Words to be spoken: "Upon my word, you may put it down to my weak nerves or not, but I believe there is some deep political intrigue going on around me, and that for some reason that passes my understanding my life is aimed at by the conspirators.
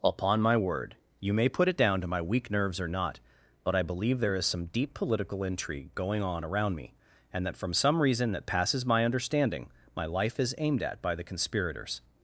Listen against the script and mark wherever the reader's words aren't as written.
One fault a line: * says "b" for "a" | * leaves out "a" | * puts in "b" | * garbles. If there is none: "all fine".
* says "from" for "for"